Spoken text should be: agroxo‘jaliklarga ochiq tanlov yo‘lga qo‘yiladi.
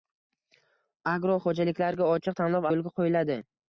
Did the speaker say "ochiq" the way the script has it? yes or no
yes